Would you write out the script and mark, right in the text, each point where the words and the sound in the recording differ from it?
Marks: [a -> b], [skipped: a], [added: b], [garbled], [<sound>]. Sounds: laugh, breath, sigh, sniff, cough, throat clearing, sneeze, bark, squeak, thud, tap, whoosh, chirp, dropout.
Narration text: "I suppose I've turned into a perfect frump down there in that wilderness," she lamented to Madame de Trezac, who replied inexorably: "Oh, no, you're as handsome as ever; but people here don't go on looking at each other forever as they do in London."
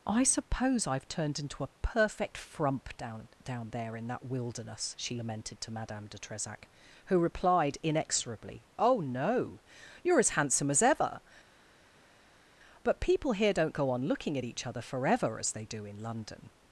"I suppose I've turned into a perfect frump down [added: down] there in that wilderness," she lamented to Madame de Trezac, who replied inexorably: "Oh, no, you're as handsome as ever; but people here don't go on looking at each other forever as they do in London."